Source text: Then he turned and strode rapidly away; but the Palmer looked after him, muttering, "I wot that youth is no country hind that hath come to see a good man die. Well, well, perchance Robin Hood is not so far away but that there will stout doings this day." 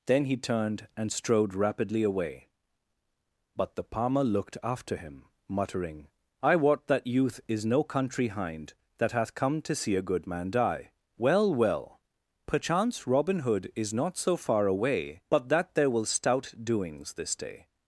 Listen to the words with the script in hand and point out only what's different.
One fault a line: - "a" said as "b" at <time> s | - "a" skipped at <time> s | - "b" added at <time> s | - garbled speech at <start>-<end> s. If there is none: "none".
none